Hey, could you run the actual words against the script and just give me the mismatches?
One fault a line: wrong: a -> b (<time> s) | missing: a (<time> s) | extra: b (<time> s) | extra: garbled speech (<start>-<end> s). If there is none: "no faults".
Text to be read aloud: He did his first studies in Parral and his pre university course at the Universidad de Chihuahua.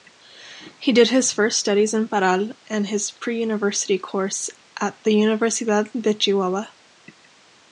no faults